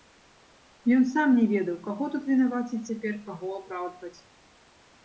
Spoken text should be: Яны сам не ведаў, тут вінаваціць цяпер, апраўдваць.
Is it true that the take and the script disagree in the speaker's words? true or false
true